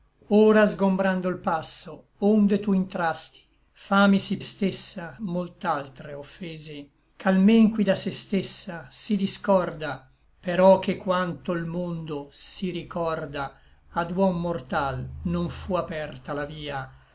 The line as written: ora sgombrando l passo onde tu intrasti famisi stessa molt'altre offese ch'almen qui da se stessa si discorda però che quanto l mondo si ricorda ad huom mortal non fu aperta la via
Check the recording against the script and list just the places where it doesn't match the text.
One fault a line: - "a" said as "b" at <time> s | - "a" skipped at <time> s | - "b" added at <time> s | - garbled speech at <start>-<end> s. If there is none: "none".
none